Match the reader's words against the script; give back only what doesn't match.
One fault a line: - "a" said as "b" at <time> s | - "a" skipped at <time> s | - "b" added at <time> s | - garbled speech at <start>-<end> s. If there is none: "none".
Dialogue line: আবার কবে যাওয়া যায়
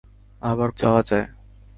- "কবে" skipped at 0.7 s